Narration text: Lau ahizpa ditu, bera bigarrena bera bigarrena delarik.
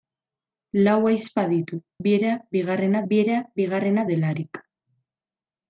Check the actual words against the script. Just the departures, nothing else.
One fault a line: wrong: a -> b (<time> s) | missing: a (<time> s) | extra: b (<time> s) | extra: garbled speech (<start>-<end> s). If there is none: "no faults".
no faults